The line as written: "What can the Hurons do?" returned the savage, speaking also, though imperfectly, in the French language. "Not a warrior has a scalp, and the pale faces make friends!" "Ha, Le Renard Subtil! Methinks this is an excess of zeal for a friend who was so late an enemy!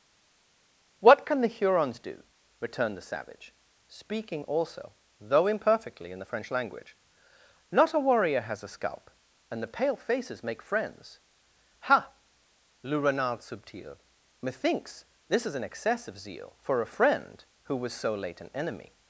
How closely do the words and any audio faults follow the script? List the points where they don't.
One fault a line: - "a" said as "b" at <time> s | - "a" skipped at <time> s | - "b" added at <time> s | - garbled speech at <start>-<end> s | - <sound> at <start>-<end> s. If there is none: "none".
none